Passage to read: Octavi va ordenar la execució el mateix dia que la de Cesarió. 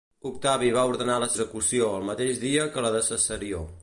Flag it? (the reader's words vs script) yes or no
no